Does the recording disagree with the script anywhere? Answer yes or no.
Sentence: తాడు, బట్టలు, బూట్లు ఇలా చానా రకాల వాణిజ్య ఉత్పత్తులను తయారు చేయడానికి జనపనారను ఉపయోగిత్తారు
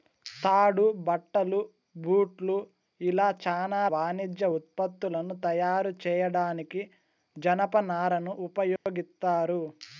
yes